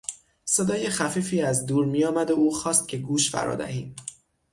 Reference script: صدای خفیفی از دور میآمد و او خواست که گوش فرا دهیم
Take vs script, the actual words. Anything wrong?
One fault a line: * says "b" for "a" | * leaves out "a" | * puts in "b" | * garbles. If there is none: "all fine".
all fine